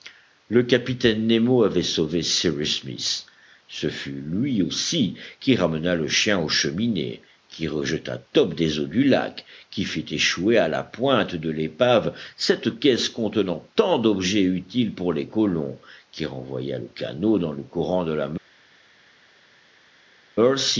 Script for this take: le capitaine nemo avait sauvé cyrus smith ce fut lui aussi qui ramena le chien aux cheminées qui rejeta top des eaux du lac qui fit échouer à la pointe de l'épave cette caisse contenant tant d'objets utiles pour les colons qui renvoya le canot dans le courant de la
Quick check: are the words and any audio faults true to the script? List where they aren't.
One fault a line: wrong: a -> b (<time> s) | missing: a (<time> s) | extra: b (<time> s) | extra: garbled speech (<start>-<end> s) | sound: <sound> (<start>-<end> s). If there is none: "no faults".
no faults